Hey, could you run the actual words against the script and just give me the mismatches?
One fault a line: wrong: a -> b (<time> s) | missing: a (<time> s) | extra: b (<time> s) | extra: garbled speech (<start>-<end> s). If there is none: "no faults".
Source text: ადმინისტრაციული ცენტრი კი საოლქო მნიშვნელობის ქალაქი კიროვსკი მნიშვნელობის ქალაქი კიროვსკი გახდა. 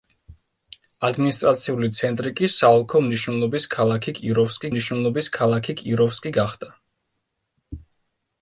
no faults